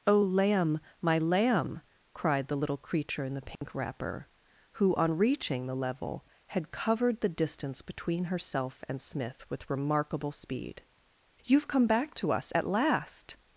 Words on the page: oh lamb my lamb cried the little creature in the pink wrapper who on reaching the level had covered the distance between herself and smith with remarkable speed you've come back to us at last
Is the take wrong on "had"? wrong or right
right